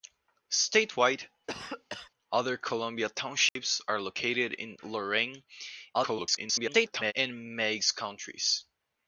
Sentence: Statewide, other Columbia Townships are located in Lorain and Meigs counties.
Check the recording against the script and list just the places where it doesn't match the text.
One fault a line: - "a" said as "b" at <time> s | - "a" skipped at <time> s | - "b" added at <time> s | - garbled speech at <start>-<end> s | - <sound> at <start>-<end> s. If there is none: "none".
- cough at 1.5-2.1 s
- dropout at 3.5-3.6 s
- garbled speech at 5.9-7.1 s